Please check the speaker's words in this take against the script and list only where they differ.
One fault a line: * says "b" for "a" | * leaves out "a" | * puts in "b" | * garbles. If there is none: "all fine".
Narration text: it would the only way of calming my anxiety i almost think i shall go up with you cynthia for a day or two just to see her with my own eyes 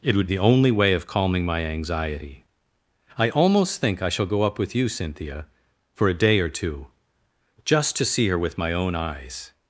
all fine